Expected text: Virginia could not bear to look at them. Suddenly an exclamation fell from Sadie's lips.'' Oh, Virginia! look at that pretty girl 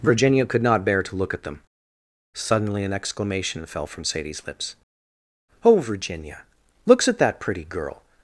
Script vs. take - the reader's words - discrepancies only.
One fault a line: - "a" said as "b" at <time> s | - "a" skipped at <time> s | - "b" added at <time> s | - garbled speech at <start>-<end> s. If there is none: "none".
- "look" said as "looks" at 6.9 s